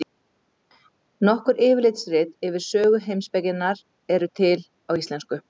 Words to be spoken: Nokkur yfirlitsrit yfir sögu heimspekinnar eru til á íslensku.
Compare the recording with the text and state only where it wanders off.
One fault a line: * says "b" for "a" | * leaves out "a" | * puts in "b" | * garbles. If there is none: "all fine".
all fine